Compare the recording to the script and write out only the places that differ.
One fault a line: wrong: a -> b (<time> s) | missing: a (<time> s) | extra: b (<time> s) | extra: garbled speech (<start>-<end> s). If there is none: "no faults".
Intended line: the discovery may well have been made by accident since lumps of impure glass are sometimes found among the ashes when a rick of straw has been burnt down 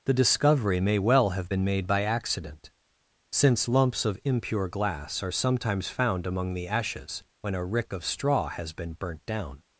no faults